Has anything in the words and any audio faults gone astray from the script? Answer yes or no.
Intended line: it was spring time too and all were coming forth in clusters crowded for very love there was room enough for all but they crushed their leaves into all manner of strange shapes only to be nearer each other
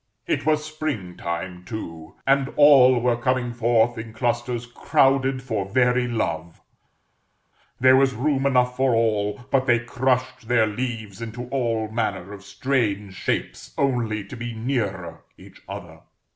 no